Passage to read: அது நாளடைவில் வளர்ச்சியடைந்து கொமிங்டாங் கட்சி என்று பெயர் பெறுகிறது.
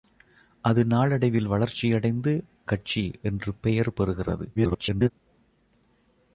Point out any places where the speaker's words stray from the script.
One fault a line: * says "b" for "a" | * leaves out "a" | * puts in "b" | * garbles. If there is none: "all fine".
* leaves out "கொமிங்டாங்"
* garbles